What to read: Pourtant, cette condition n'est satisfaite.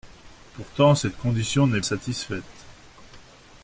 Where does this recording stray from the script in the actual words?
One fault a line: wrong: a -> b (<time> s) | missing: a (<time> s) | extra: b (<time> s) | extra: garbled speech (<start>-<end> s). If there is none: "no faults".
no faults